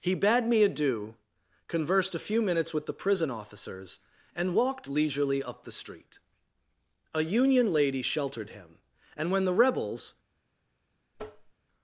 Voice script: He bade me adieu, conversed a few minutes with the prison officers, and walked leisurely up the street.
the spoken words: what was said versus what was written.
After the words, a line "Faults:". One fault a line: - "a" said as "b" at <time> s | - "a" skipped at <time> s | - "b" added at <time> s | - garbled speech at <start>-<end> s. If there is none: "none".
He bade me adieu, conversed a few minutes with the prison officers, and walked leisurely up the street. A Union lady sheltered him, and when the Rebels
Faults:
- "A Union lady sheltered him and when the Rebels" added at 7.1 s